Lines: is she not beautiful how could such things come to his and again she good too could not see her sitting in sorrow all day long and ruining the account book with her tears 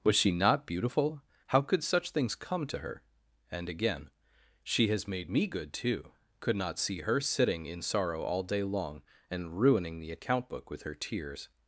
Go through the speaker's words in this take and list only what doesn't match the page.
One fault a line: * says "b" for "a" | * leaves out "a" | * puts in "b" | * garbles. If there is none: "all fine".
* says "was" for "is"
* says "her" for "his"
* puts in "has made me"